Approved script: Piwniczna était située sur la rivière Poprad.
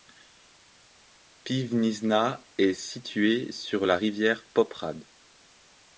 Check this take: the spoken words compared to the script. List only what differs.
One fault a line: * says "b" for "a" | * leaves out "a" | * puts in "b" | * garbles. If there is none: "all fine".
* says "est" for "était"